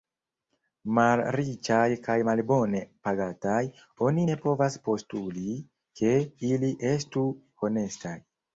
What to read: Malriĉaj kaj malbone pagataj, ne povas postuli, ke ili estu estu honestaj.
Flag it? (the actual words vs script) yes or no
yes